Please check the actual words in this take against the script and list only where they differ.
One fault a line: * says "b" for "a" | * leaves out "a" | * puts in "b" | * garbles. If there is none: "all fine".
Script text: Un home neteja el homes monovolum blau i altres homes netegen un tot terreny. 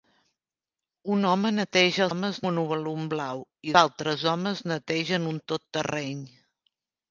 all fine